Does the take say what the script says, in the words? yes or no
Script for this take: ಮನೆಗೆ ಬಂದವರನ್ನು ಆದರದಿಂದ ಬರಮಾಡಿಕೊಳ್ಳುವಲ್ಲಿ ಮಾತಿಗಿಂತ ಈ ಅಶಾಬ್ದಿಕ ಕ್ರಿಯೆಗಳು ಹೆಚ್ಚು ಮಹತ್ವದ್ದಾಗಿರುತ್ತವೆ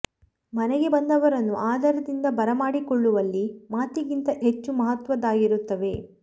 no